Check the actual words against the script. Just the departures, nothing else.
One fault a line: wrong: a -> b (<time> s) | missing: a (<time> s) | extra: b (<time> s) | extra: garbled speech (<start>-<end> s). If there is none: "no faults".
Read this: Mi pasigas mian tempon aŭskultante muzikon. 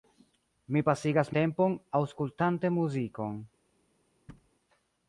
missing: mian (1.3 s)